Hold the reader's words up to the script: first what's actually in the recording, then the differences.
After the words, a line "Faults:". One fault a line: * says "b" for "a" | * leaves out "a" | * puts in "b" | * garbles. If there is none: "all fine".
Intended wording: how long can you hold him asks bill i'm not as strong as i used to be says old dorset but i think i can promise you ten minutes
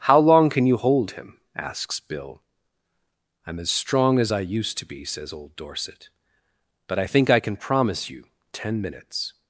how long can you hold him asks bill i'm as strong as i used to be says old dorset but i think i can promise you ten minutes
Faults:
* leaves out "not"